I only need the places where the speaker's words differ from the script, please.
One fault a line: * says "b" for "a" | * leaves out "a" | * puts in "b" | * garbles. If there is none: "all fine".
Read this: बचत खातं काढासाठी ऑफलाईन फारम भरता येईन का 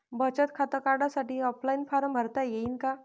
all fine